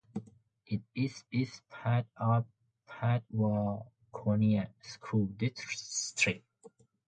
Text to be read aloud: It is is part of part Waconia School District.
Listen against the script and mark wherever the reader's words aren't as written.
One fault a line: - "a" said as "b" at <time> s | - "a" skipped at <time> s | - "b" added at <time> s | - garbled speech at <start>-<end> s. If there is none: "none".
none